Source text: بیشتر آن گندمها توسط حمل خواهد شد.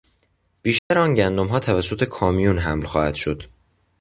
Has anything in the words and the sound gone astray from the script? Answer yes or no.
yes